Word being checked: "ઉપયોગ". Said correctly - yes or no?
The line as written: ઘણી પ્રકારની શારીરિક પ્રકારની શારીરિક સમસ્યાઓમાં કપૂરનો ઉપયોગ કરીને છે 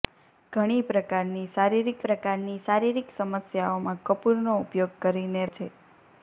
yes